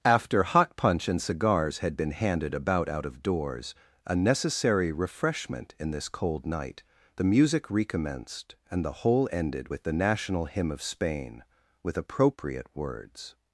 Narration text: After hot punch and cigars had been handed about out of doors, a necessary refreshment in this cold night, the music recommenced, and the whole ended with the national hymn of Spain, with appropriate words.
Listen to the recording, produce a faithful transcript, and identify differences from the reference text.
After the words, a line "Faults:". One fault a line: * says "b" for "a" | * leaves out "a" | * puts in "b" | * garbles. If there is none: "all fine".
After hot punch and cigars had been handed about out of doors, a necessary refreshment in this cold night, the music recommenced, and the whole ended with the national hymn of Spain, with appropriate words.
Faults:
all fine